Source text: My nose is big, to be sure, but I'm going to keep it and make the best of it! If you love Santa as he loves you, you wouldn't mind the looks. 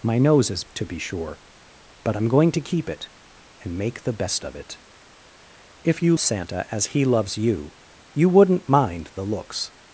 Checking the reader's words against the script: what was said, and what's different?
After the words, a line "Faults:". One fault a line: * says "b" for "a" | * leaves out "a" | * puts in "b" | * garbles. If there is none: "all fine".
My nose is to be sure, but I'm going to keep it and make the best of it! If you Santa as he loves you, you wouldn't mind the looks.
Faults:
* leaves out "big"
* leaves out "love"